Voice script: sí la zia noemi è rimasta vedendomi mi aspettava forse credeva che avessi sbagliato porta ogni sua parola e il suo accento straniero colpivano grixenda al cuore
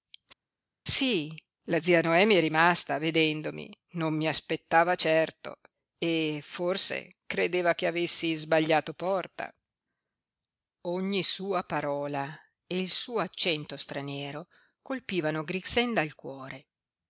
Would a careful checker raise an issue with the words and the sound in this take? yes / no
yes